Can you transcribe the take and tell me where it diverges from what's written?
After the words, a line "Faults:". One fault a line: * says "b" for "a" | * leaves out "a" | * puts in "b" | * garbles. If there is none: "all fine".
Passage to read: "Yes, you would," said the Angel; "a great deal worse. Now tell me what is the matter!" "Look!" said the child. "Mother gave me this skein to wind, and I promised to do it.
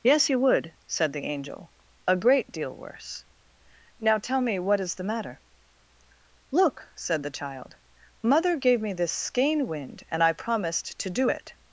"Yes, you would," said the Angel; "a great deal worse. Now tell me what is the matter!" "Look!" said the child. "Mother gave me this skein wind, and I promised to do it.
Faults:
* leaves out "to"